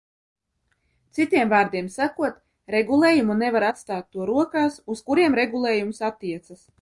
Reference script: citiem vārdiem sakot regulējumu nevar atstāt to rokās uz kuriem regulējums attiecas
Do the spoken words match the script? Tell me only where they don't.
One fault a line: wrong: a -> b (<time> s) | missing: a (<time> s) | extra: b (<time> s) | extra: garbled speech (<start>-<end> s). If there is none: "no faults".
no faults